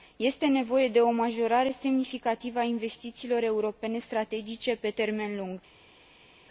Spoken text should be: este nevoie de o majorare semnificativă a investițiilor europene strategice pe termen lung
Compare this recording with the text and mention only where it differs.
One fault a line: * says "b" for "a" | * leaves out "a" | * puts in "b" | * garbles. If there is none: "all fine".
all fine